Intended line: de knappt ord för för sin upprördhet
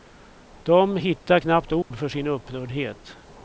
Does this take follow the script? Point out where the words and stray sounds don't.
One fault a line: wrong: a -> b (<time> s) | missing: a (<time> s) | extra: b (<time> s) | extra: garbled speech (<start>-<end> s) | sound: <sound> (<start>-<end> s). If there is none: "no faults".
extra: hittar (1.0 s)
sound: dropout (1.8-1.9 s)
missing: för (2.1 s)